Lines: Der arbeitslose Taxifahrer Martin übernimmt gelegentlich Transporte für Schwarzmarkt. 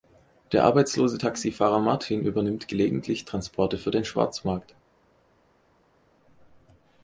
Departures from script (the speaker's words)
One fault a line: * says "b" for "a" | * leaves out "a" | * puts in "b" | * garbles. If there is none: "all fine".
* puts in "den"